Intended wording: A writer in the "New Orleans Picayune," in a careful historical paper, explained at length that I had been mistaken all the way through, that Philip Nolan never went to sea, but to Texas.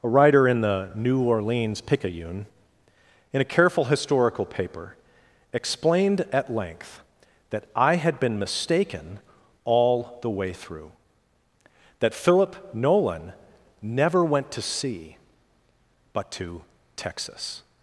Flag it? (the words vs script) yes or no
no